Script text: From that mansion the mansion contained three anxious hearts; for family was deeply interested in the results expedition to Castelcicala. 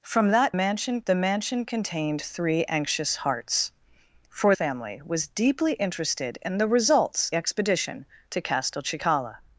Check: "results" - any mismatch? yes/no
no